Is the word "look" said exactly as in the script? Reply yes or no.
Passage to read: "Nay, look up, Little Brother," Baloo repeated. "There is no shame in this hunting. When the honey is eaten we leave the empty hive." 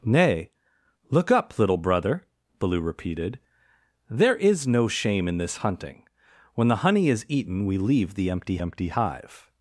yes